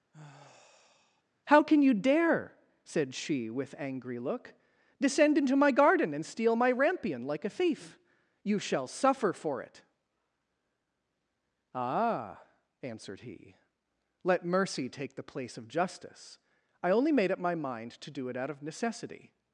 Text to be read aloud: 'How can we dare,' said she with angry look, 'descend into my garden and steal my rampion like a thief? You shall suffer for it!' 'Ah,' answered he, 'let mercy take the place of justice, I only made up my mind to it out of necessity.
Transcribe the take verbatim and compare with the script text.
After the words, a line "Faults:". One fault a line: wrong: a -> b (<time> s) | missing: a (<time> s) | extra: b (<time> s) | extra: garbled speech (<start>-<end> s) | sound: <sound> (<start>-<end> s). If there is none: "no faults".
'How can you dare,' said she with angry look, 'descend into my garden and steal my rampion like a thief? You shall suffer for it!' 'Ah,' answered he, 'let mercy take the place of justice, I only made up my mind to do it out of necessity.
Faults:
sound: sigh (0.1-1.2 s)
wrong: we -> you (1.8 s)
extra: do (18.1 s)